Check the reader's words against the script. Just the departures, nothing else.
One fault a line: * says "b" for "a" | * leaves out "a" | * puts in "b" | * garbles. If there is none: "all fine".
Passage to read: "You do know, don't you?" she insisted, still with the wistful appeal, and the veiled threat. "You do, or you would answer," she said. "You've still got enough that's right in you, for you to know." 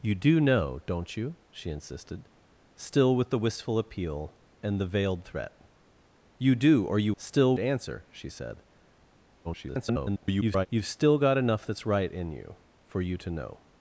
* says "still" for "would"
* garbles